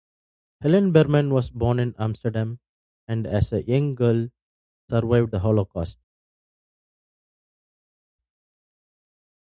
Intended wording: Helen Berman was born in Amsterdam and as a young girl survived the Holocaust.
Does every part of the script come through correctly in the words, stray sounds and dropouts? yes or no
yes